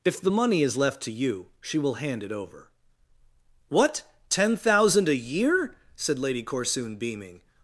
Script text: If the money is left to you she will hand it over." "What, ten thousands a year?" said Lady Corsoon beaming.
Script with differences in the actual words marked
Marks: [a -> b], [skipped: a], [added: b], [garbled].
If the money is left to you she will hand it over." "What, ten [thousands -> thousand] a year?" said Lady Corsoon beaming.